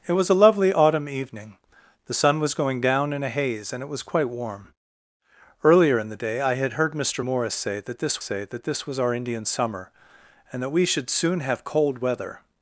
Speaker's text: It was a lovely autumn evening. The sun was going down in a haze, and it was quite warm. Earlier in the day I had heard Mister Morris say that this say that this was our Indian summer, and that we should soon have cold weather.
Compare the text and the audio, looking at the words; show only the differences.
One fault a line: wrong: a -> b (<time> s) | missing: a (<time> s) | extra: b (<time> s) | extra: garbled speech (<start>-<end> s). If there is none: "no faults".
no faults